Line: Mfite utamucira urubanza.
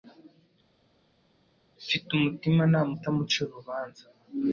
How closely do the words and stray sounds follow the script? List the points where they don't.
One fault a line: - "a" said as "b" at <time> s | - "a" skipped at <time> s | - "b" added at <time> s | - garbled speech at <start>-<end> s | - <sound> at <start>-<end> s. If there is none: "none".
- "umutimanama" added at 2.1 s